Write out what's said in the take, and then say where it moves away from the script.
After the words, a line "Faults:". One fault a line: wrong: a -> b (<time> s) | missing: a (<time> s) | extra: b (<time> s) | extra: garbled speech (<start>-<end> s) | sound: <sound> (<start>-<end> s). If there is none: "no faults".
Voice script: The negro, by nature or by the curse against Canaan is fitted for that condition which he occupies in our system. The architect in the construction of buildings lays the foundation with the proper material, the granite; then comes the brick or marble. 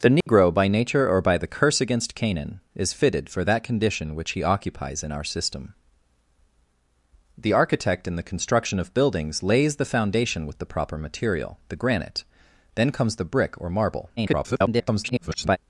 The negro, by nature or by the curse against Canaan is fitted for that condition which he occupies in our system. The architect in the construction of buildings lays the foundation with the proper material, the granite; then comes the brick or marble. [garbled]
Faults:
sound: dropout (0.2-0.3 s)
extra: garbled speech (14.2-15.6 s)